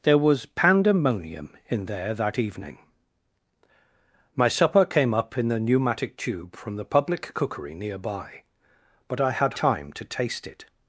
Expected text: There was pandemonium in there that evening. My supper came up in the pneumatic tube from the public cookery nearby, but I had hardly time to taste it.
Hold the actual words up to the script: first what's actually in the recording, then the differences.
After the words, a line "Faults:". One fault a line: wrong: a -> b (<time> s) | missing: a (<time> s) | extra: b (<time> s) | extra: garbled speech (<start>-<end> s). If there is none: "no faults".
There was pandemonium in there that evening. My supper came up in the pneumatic tube from the public cookery nearby, but I had time to taste it.
Faults:
missing: hardly (9.6 s)